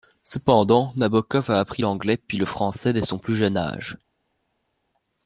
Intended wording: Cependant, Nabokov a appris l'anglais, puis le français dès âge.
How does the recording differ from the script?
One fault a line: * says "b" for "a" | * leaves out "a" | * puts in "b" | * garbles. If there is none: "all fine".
* puts in "son plus jeune"